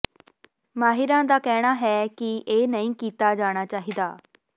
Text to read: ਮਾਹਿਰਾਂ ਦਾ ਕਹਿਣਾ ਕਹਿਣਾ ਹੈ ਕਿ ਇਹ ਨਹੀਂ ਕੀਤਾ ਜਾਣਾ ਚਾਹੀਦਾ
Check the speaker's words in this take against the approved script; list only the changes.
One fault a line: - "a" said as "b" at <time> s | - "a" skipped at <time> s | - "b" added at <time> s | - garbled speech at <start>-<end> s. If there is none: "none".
- "ਕਹਿਣਾ" skipped at 1.7 s